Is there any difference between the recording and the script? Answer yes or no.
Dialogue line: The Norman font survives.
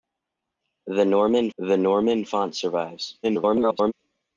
yes